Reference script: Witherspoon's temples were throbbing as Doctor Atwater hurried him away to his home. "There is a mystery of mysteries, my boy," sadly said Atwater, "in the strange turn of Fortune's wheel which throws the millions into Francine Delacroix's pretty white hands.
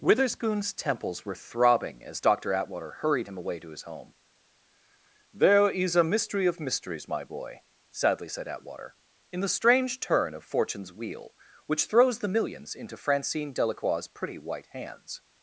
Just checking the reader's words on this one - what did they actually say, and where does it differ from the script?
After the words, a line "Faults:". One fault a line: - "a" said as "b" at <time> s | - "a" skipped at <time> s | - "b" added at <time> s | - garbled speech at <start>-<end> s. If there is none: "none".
Witherspoon's temples were throbbing as Doctor Atwater hurried him away to his home. "There is a mystery of mysteries, my boy," sadly said Atwater, "in the strange turn of Fortune's wheel which throws the millions into Francine Delacroix's pretty white hands.
Faults:
none